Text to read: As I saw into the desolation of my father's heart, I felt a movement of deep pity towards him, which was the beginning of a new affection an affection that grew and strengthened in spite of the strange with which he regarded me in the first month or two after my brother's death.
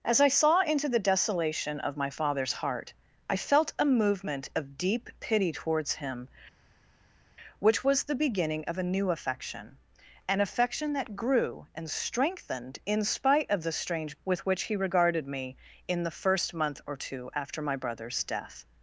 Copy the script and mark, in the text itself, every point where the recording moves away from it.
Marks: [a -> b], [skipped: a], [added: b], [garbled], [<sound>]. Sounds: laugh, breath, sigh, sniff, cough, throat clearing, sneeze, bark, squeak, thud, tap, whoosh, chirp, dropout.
As I saw into the desolation of my father's heart, I felt a movement of deep pity towards him, which was the beginning of a new affection an affection that grew and strengthened in spite of the strange with which he regarded me in the first month or two after my brother's death.